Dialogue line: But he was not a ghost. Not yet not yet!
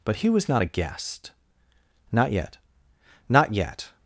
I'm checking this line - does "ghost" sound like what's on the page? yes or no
no